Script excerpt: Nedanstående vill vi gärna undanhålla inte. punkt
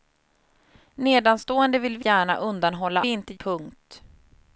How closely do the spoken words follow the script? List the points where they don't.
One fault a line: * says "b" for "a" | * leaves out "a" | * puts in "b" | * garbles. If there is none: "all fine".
all fine